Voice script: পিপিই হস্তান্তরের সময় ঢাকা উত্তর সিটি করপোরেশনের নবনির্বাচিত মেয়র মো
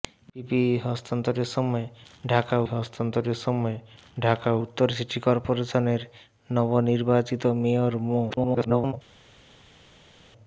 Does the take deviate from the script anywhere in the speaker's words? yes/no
yes